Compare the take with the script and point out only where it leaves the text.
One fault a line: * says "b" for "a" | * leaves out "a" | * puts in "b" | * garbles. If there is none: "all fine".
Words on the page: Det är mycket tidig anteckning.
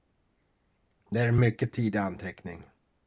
* puts in "en"